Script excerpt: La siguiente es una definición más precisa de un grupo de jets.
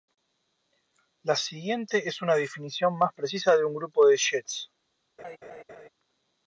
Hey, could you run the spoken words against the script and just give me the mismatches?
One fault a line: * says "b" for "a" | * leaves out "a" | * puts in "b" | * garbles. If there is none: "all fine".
all fine